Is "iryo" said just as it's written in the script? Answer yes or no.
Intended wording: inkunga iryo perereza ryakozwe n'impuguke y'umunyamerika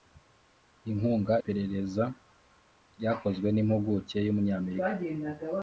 no